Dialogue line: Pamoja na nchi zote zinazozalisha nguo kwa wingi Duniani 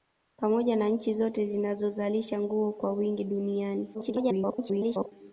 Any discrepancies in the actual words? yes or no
yes